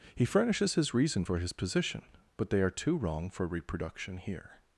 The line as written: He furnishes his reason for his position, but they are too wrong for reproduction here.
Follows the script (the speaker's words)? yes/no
yes